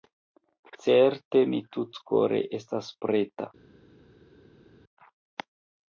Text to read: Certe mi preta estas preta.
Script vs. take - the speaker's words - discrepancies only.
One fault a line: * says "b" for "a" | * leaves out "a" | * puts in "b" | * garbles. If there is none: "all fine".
* says "tutkore" for "preta"